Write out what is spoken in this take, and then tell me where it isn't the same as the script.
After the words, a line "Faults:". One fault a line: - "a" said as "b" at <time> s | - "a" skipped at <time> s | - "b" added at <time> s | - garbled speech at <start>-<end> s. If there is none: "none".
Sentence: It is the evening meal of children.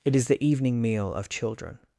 It is the evening meal of children.
Faults:
none